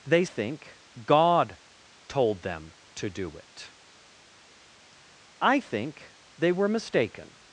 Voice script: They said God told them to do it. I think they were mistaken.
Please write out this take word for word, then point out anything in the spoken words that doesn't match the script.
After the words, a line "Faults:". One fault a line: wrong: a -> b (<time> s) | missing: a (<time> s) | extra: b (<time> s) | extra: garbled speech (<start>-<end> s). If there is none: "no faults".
They think God told them to do it. I think they were mistaken.
Faults:
wrong: said -> think (0.2 s)